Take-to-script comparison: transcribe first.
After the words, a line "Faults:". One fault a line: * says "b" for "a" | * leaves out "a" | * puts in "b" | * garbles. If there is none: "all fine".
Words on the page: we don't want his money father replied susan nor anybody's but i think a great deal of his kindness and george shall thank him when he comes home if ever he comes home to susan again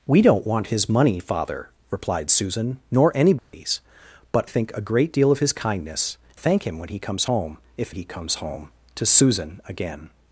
we don't want his money father replied susan nor anybody's but think a great deal of his kindness thank him when he comes home if he comes home to susan again
Faults:
* leaves out "i"
* leaves out "and george shall"
* leaves out "ever"